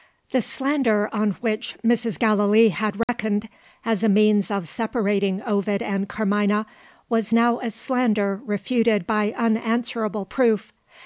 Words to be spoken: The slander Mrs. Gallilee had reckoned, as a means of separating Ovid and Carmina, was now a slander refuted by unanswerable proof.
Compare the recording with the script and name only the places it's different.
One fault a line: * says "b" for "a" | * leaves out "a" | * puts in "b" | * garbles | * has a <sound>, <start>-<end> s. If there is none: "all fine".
* puts in "on which"
* has a dropout, 3.0-3.1 s